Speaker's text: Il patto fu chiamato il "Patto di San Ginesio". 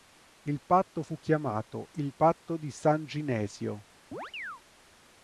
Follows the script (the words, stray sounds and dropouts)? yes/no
no